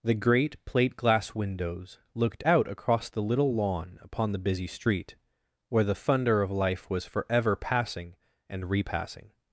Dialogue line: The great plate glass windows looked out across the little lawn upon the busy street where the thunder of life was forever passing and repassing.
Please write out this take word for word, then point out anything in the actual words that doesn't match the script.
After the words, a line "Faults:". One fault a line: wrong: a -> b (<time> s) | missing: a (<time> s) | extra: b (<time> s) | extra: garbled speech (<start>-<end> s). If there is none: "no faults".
The great plate glass windows looked out across the little lawn upon the busy street where the thunder of life was forever passing and repassing.
Faults:
no faults